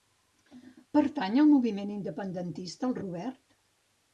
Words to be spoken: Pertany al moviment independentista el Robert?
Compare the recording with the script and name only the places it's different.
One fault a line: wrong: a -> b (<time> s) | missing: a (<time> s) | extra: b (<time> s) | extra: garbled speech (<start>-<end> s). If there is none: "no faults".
no faults